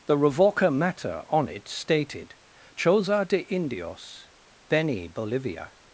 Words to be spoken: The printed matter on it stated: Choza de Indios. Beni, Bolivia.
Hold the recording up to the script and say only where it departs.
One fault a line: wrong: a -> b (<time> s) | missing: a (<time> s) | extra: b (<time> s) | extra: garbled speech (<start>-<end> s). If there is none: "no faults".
wrong: printed -> revoca (0.2 s)